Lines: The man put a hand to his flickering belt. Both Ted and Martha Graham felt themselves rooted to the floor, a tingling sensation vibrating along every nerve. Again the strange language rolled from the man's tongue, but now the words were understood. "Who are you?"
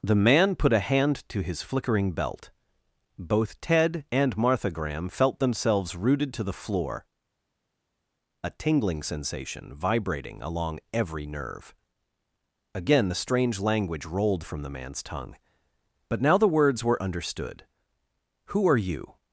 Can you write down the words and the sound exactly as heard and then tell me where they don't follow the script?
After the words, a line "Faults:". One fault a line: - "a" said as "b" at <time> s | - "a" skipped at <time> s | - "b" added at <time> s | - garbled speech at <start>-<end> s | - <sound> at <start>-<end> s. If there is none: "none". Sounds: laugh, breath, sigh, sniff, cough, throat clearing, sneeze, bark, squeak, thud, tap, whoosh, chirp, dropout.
The man put a hand to his flickering belt. Both Ted and Martha Graham felt themselves rooted to the floor, a tingling sensation vibrating along every nerve. Again the strange language rolled from the man's tongue, but now the words were understood. "Who are you?"
Faults:
none